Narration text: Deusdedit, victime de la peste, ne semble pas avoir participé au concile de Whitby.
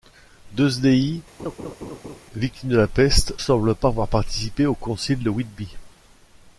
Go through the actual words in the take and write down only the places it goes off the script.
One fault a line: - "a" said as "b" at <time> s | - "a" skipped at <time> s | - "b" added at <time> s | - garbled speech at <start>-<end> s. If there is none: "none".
- "ne" skipped at 3.3 s